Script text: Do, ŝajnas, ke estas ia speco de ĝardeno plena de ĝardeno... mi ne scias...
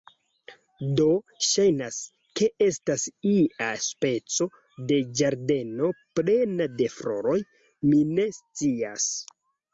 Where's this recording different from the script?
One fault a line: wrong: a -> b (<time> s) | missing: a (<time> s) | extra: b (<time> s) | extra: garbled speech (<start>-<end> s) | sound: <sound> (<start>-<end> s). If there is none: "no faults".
wrong: ĝardeno -> floroj (7.0 s)